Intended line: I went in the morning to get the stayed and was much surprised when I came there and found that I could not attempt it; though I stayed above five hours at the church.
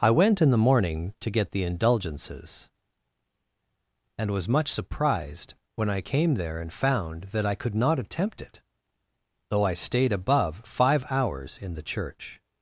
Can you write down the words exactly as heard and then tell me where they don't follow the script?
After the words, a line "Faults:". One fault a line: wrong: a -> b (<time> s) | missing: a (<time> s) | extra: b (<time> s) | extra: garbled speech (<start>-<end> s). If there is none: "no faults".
I went in the morning to get the indulgences and was much surprised when I came there and found that I could not attempt it; though I stayed above five hours in the church.
Faults:
wrong: stayed -> indulgences (1.6 s)
wrong: at -> in (11.6 s)